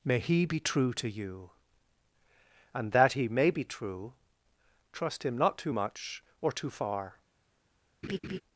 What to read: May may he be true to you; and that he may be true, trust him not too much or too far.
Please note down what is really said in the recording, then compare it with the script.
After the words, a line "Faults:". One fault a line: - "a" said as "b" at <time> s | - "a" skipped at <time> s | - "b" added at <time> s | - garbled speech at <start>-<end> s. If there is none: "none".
May he be true to you; and that he may be true, trust him not too much or too far.
Faults:
- "may" skipped at 0.2 s